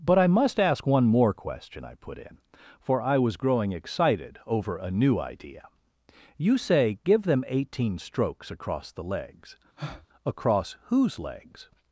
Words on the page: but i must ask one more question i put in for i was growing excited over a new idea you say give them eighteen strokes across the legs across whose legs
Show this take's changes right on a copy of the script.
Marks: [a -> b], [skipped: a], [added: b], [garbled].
but i must ask one more question i put in for i was growing excited over a new idea you say give them eighteen strokes across the legs across whose legs